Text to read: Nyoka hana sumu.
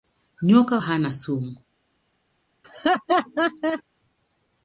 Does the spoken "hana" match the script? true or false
true